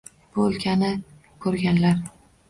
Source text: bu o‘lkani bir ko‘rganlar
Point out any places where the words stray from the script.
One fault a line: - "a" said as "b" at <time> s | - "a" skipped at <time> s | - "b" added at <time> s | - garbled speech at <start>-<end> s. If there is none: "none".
- "bir" skipped at 0.9 s